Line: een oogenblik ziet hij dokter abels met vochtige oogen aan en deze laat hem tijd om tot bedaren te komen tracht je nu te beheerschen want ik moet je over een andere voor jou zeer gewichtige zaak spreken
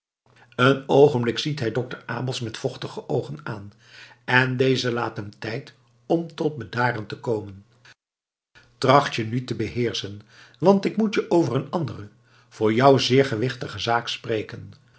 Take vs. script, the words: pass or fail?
pass